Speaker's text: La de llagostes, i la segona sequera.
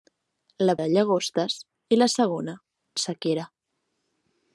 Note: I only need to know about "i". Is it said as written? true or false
true